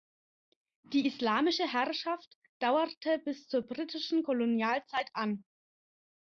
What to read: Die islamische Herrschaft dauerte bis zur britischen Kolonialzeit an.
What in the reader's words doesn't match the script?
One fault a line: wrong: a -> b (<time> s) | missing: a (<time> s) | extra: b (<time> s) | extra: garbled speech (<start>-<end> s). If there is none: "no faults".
no faults